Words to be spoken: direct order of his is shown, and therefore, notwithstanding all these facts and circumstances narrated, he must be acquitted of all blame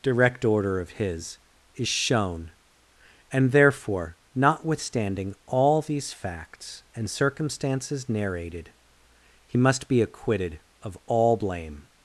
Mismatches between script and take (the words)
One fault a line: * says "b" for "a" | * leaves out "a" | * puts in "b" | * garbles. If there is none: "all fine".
all fine